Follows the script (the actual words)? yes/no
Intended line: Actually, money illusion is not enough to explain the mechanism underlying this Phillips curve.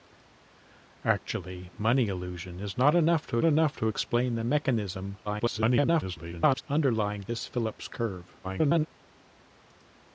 no